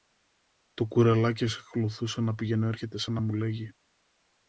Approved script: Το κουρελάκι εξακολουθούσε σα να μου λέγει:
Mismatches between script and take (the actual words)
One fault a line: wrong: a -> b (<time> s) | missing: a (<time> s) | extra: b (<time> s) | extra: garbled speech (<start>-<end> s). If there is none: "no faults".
extra: να πηγαινοέρχεται (2.2 s)